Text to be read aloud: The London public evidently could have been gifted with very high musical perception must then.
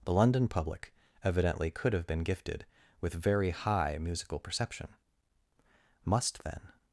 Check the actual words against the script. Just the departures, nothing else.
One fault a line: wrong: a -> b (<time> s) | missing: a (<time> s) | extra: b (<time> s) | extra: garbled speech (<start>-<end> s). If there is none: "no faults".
no faults